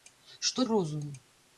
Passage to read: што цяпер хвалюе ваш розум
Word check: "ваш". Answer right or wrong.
wrong